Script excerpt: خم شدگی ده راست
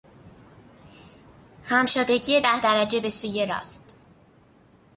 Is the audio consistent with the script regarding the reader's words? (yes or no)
no